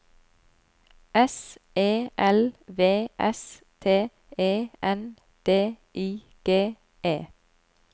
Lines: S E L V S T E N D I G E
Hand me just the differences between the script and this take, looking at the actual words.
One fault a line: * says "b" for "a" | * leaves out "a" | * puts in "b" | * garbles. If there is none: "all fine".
all fine